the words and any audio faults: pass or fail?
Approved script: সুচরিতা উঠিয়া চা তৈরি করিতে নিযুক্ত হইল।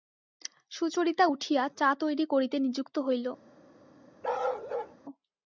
fail